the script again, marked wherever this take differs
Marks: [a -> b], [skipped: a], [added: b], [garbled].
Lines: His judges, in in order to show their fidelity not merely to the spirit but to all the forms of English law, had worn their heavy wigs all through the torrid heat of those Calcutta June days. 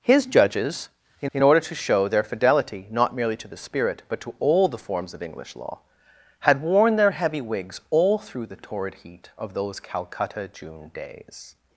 His judges, in in order to show their fidelity not merely to the spirit but to all the forms of English law, had worn their heavy wigs all through the torrid heat of those Calcutta June days.